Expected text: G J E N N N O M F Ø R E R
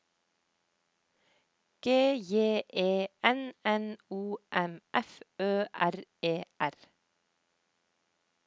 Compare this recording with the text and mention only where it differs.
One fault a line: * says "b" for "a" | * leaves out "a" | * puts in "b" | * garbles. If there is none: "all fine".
* leaves out "N"